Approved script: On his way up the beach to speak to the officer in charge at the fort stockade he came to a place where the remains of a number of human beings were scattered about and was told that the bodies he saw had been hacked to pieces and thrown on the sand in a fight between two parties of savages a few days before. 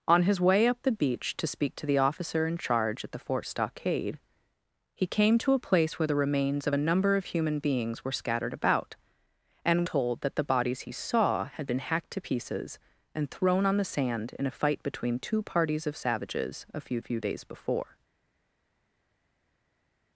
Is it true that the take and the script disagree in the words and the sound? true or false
true